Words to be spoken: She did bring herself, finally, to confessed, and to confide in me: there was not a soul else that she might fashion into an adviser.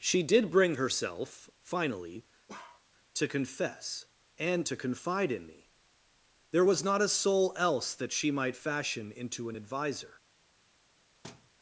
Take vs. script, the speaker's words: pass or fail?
fail